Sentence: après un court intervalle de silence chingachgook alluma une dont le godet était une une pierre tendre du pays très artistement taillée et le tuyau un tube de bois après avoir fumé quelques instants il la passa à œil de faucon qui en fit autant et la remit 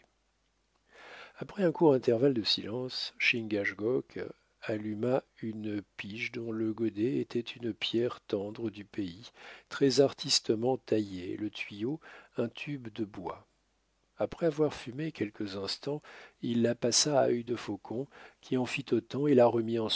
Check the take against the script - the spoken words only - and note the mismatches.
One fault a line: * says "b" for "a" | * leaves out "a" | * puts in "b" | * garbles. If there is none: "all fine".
* puts in "pige"
* leaves out "une"